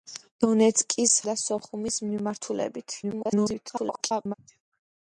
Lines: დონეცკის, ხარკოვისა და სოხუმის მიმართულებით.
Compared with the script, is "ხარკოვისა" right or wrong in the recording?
wrong